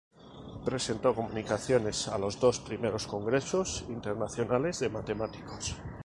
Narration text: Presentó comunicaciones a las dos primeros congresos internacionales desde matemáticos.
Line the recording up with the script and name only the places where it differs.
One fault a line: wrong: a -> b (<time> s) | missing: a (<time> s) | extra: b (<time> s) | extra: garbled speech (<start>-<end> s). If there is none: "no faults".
wrong: las -> los (2.2 s)
wrong: desde -> de (4.8 s)